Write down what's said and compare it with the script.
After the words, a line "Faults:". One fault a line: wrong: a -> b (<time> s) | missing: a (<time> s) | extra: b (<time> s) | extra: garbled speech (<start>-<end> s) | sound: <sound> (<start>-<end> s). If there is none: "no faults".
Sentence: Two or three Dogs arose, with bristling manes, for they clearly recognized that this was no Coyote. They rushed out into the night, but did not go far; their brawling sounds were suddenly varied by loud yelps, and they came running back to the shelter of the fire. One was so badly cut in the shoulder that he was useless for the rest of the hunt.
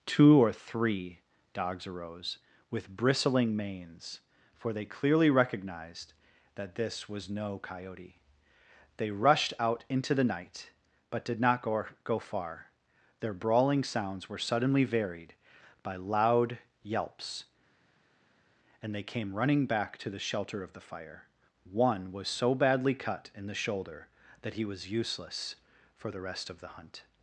Two or three Dogs arose, with bristling manes, for they clearly recognized that this was no Coyote. They rushed out into the night, but did not go go far; their brawling sounds were suddenly varied by loud yelps, and they came running back to the shelter of the fire. One was so badly cut in the shoulder that he was useless for the rest of the hunt.
Faults:
extra: go (12.0 s)